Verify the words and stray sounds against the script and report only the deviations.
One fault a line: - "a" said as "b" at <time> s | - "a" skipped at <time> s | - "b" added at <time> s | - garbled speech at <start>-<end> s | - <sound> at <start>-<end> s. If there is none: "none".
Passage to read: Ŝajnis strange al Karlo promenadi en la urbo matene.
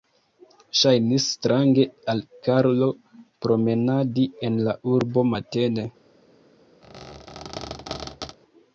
- squeak at 6.8-8.4 s